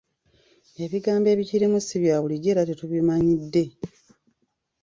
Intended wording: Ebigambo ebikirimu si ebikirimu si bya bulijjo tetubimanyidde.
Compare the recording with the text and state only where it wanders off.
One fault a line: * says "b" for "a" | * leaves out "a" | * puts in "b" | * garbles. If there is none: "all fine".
* leaves out "ebikirimu si"
* puts in "era"